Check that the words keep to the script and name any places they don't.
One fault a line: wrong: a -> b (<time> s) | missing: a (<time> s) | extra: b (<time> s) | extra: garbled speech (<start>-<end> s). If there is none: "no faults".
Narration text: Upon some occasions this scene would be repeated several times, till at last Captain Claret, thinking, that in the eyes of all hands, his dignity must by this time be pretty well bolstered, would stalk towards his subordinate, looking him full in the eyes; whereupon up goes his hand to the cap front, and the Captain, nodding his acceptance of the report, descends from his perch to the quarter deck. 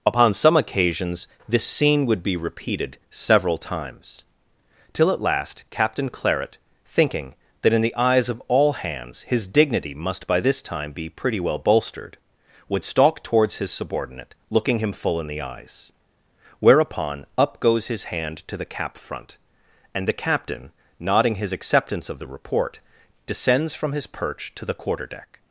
no faults